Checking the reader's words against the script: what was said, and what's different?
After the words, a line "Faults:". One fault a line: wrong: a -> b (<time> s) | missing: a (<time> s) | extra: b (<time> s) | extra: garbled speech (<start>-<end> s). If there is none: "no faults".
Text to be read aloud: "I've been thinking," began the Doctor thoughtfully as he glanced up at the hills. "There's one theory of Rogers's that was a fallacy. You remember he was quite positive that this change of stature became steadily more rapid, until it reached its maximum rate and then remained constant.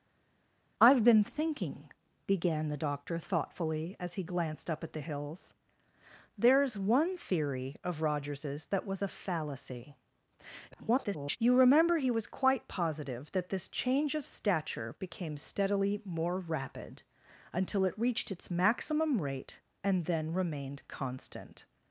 "I've been thinking," began the Doctor thoughtfully as he glanced up at the hills. "There's one theory of Rogers's that was a fallacy. [garbled] You remember he was quite positive that this change of stature became steadily more rapid, until it reached its maximum rate and then remained constant.
Faults:
extra: garbled speech (10.7-11.4 s)